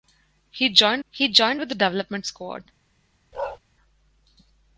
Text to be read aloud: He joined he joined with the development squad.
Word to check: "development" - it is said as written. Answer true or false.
true